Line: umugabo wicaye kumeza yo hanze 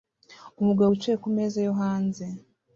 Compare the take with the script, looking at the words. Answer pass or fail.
pass